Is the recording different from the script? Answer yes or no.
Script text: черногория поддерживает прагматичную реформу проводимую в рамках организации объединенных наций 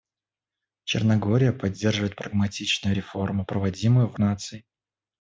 yes